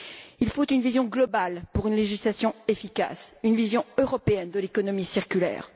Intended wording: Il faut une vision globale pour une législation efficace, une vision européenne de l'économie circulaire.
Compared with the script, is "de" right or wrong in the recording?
right